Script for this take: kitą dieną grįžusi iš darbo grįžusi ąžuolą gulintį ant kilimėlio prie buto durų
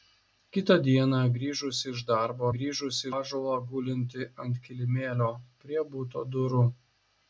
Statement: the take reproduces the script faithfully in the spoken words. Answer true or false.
true